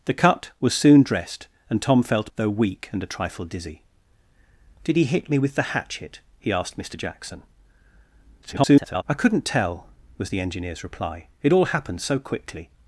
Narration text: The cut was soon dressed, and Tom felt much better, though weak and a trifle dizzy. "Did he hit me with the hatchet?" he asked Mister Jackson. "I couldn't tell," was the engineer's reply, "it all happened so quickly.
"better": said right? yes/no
no